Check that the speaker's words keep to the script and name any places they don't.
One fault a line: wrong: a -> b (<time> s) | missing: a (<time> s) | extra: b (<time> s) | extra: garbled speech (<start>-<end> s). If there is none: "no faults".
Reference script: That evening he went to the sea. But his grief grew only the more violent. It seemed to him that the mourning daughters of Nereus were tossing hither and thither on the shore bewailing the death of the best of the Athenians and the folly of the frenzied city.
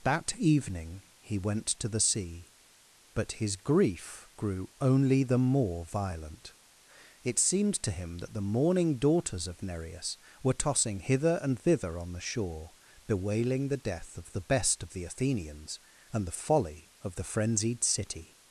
no faults